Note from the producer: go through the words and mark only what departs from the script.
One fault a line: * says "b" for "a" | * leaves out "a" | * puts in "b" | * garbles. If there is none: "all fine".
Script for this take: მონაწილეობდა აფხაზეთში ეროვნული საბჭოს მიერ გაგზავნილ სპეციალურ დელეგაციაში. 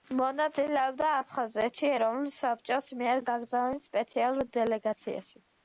all fine